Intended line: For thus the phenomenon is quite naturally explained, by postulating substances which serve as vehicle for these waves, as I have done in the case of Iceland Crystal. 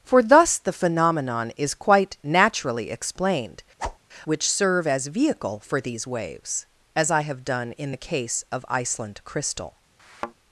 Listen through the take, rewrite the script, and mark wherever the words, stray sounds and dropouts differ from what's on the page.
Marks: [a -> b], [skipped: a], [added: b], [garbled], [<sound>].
For thus the phenomenon is quite naturally explained, [skipped: by postulating substances] [whoosh] which serve as vehicle for these waves, as I have done in the case of Iceland Crystal. [thud]